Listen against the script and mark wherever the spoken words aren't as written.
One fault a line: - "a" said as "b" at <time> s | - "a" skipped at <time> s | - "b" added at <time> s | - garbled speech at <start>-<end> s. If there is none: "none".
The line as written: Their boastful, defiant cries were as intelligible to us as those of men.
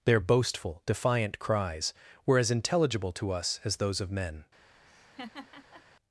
none